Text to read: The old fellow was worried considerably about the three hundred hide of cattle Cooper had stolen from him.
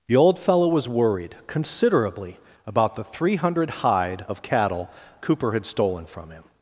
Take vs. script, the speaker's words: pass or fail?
pass